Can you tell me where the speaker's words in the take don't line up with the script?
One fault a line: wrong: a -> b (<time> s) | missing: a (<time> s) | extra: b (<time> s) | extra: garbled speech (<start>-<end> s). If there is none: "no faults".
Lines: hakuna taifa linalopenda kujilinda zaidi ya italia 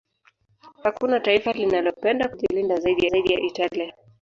extra: zaidi (3.1 s)